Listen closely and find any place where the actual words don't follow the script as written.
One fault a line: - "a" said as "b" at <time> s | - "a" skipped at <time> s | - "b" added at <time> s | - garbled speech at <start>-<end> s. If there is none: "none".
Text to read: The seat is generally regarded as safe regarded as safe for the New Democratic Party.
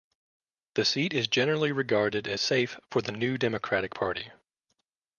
- "regarded as safe" skipped at 2.8 s